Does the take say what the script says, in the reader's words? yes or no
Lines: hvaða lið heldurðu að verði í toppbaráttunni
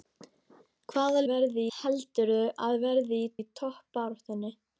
no